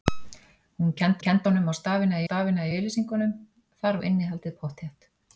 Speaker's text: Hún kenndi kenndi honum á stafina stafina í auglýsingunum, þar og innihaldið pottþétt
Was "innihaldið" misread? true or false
false